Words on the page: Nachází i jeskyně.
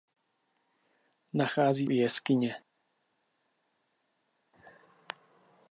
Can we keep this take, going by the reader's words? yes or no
yes